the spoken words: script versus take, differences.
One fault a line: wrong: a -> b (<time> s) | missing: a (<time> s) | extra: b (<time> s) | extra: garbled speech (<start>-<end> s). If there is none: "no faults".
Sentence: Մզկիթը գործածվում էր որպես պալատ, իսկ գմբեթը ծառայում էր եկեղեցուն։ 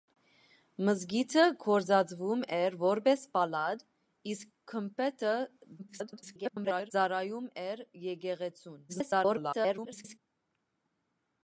extra: garbled speech (5.8-6.9 s)
extra: garbled speech (8.9-10.2 s)